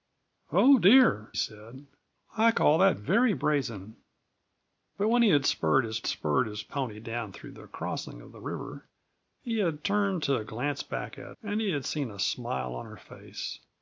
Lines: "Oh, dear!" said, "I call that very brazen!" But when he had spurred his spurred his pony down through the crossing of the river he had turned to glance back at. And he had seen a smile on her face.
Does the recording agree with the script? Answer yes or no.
yes